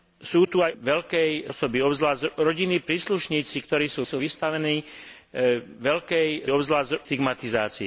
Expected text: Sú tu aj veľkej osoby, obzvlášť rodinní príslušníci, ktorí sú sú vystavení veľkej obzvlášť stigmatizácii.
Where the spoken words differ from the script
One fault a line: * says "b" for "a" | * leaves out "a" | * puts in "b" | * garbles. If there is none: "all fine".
all fine